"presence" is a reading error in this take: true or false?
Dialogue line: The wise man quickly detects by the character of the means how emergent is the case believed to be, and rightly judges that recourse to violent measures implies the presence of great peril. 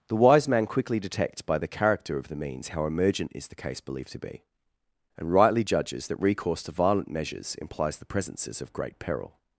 true